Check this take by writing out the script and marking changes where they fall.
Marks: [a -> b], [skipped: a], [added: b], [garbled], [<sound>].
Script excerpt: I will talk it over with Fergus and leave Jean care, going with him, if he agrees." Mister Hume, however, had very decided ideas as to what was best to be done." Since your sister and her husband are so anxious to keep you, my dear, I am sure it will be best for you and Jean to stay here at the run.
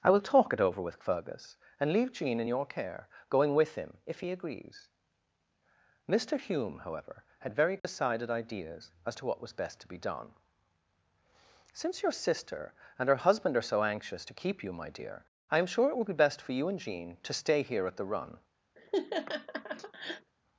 I will talk it over with Fergus and leave Jean [added: in your] care, going with him, if he agrees." Mister Hume, however, had very decided [dropout] ideas as to what was best to be done." Since your sister and her husband are so anxious to keep you, my dear, I am sure it will be best for you and Jean to stay here at the run. [laugh]